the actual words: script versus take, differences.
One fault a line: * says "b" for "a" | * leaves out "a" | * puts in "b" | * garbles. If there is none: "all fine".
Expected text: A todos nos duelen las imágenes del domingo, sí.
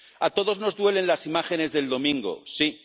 all fine